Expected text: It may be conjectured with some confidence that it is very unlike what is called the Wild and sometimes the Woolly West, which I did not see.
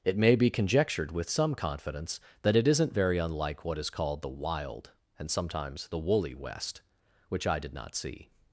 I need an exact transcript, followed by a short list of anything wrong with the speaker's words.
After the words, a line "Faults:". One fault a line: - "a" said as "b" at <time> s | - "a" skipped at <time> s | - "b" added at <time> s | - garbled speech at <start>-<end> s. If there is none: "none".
It may be conjectured with some confidence that it isn't very unlike what is called the Wild and sometimes the Woolly West, which I did not see.
Faults:
- "is" said as "isn't" at 2.7 s